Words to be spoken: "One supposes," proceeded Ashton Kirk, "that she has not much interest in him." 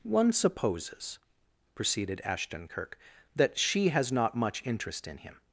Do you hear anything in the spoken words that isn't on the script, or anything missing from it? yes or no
no